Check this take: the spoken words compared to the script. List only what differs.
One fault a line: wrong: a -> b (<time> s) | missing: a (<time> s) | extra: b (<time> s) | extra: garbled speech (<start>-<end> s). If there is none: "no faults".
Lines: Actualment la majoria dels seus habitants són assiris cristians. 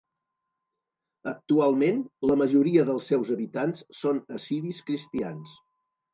no faults